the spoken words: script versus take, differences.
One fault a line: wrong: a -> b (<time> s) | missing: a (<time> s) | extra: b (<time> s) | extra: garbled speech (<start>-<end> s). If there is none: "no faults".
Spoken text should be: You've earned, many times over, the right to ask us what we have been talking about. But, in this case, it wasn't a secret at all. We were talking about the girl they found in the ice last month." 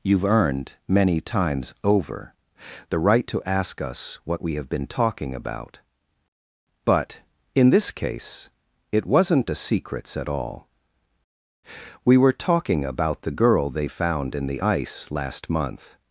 wrong: secret -> secrets (9.6 s)